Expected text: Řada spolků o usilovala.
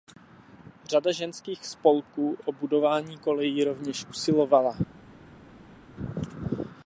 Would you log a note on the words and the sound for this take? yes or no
yes